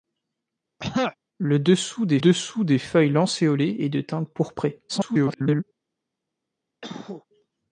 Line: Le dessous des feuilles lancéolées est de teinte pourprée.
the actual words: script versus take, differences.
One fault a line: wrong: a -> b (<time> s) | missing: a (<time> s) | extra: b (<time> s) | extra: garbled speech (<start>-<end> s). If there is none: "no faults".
extra: dessous des (2.2 s)
extra: garbled speech (4.9-5.6 s)